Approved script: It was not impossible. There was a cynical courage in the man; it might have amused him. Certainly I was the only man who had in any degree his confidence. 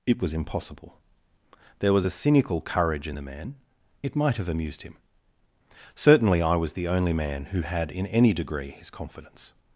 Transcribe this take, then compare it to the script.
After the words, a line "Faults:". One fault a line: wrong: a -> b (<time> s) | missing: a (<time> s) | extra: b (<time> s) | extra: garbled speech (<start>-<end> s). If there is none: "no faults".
It was impossible. There was a cynical courage in the man; it might have amused him. Certainly I was the only man who had in any degree his confidence.
Faults:
missing: not (0.3 s)